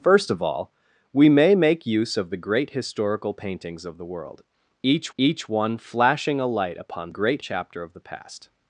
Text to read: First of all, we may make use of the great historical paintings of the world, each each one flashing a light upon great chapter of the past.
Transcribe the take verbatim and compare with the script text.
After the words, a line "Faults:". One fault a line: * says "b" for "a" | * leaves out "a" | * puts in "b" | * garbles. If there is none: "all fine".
First of all, we may make use of the great historical paintings of the world, each each one flashing a light upon great chapter of the past.
Faults:
all fine